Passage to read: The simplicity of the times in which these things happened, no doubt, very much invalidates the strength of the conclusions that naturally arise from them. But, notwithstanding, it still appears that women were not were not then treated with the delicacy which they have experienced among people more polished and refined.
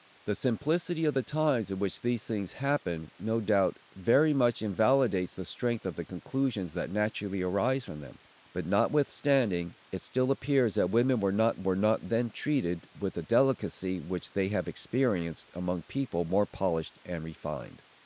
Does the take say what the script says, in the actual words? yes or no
yes